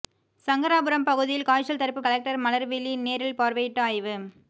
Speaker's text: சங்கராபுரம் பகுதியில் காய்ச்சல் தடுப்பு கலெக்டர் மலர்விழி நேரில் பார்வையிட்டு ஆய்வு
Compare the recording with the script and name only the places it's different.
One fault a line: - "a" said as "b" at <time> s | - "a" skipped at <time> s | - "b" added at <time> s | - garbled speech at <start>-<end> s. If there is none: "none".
none